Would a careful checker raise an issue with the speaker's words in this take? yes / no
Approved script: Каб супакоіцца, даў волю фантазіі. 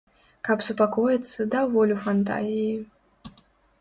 no